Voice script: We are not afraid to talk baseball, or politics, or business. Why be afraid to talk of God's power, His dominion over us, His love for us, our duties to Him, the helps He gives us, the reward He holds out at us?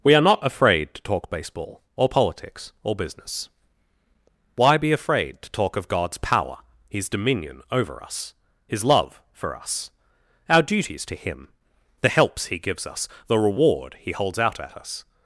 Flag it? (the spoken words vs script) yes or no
no